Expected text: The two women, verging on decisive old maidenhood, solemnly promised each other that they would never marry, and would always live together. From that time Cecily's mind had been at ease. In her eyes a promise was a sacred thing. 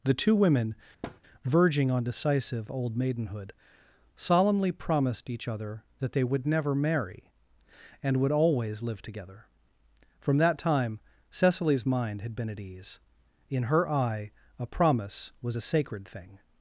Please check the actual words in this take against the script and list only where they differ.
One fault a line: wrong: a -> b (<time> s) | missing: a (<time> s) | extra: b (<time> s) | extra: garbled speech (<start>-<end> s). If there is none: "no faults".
wrong: eyes -> eye (13.9 s)